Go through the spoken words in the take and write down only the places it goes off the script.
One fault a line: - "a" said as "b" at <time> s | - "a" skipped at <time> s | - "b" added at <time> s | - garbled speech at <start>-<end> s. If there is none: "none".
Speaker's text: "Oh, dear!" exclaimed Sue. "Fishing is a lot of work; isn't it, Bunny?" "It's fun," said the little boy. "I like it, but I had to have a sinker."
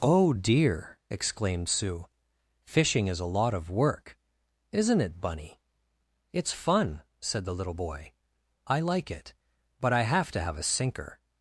- "had" said as "have" at 10.0 s